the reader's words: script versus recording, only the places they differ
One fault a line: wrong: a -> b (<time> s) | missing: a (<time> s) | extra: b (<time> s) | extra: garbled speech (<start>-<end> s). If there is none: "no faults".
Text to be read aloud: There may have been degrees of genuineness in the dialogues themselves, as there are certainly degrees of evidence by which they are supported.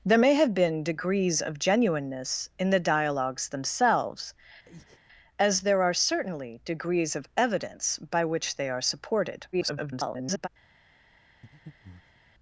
extra: garbled speech (9.5-10.5 s)